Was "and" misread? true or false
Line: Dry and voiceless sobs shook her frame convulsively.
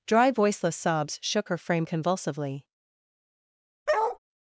true